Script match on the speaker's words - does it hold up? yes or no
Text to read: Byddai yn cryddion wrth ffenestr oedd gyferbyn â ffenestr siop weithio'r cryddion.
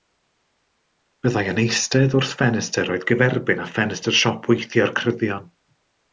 no